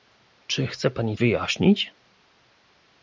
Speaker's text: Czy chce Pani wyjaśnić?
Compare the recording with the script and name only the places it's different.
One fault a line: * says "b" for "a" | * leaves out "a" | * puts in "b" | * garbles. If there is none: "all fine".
all fine